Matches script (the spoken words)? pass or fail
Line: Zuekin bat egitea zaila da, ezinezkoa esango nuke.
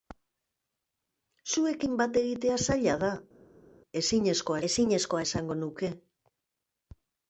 fail